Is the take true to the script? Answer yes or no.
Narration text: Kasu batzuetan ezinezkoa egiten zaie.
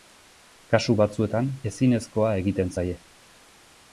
yes